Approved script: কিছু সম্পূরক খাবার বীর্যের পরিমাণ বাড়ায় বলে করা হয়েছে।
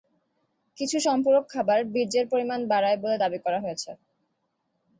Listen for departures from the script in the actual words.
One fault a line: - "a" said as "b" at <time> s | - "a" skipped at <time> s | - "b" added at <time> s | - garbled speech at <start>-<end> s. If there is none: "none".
- "দাবি" added at 3.2 s